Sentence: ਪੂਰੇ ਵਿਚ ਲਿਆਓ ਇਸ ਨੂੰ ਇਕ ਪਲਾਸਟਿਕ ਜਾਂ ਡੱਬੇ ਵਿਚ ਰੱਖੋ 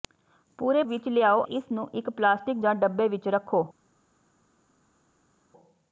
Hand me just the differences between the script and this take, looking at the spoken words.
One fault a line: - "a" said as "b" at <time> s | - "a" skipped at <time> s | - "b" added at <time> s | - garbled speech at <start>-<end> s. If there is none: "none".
none